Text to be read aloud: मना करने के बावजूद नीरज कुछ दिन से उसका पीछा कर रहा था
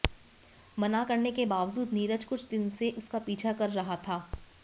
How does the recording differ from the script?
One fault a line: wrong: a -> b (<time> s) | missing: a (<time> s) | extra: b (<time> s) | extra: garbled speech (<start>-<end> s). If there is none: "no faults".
no faults